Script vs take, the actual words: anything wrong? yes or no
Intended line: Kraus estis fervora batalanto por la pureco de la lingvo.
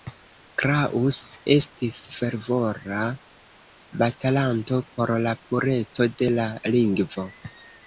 no